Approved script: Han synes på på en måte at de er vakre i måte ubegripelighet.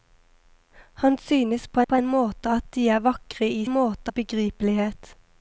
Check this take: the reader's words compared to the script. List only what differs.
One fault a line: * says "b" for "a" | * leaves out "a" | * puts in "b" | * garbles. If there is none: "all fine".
all fine